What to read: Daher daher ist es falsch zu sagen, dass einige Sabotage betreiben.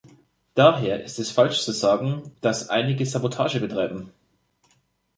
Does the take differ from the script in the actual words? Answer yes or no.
yes